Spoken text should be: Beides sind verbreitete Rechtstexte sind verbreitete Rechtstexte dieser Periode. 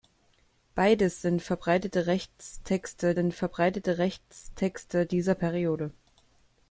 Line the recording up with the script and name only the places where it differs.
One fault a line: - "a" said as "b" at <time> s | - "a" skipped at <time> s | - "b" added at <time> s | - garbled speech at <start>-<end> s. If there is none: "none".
none